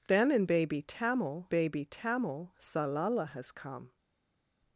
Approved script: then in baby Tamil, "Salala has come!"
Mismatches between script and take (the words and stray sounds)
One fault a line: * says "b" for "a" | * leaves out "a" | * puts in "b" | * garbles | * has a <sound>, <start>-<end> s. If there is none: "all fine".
* puts in "baby Tamil"